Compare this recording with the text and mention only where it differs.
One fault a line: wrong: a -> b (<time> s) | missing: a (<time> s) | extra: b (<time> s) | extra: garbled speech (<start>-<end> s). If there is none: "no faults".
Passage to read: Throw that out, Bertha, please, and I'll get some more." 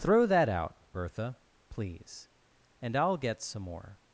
no faults